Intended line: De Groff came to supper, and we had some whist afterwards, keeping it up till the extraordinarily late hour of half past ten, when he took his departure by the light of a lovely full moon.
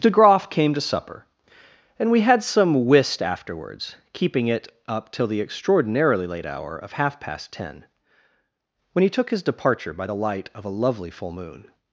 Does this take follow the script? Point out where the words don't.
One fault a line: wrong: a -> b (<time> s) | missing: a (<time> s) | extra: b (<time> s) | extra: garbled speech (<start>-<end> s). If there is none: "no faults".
no faults